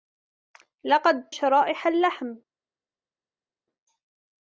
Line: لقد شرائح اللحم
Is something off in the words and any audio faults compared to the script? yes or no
no